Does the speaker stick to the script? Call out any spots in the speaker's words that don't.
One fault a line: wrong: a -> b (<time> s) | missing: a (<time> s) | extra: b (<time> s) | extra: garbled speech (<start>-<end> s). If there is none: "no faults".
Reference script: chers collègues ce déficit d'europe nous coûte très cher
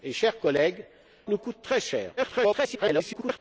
missing: ce déficit d'europe (0.8 s)
extra: garbled speech (2.2-3.4 s)